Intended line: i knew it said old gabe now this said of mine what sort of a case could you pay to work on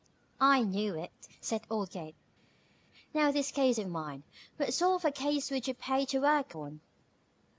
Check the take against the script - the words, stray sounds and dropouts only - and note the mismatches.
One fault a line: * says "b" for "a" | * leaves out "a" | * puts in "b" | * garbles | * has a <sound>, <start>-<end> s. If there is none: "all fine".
* says "case" for "said"
* says "would" for "could"